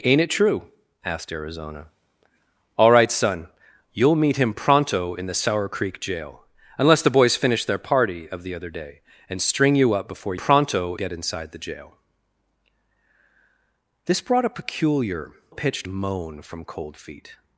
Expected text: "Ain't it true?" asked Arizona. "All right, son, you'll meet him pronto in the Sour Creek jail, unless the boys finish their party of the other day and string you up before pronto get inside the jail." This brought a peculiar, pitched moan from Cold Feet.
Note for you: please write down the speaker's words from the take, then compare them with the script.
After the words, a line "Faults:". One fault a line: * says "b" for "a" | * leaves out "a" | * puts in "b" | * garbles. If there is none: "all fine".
"Ain't it true?" asked Arizona. "All right, son, you'll meet him pronto in the Sour Creek jail, unless the boys finish their party of the other day and string you up before pronto get inside the jail." This brought a peculiar, pitched moan from Cold Feet.
Faults:
all fine